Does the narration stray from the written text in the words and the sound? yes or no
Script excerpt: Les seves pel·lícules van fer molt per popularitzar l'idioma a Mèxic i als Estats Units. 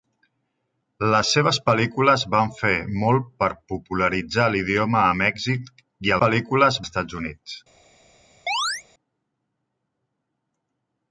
yes